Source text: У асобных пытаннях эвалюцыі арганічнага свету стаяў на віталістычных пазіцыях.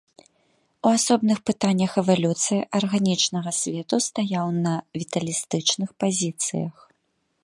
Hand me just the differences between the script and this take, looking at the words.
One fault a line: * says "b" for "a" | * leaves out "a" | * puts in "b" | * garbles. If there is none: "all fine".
all fine